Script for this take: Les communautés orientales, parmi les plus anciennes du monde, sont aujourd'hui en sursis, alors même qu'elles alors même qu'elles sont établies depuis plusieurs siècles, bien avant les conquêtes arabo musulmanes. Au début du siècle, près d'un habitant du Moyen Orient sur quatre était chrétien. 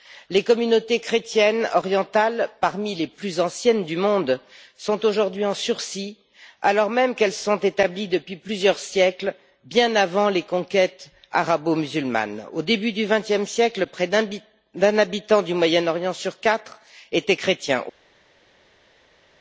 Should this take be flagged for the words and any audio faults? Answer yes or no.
yes